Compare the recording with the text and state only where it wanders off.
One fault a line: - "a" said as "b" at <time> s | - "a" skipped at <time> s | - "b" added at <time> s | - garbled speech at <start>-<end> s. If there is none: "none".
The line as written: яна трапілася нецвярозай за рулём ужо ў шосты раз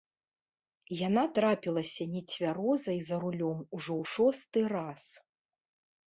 none